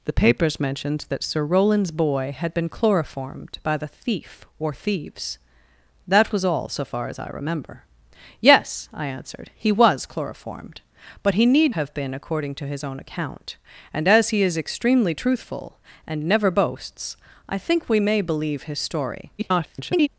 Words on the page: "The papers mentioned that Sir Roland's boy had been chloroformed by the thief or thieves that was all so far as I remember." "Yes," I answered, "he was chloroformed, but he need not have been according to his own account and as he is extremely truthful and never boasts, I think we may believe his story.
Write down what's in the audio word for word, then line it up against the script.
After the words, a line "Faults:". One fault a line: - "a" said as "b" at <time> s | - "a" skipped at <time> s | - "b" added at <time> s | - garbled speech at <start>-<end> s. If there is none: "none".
"The papers mentioned that Sir Roland's boy had been chloroformed by the thief or thieves that was all so far as I remember." "Yes," I answered, "he was chloroformed, but he need have been according to his own account and as he is extremely truthful and never boasts, I think we may believe his story. [garbled]
Faults:
- "not" skipped at 11.8 s
- garbled speech at 19.4-20.1 s